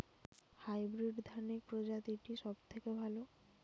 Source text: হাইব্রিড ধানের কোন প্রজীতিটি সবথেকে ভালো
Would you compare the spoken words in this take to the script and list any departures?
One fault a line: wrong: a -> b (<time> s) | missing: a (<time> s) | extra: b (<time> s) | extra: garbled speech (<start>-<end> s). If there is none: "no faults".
missing: কোন (1.6 s)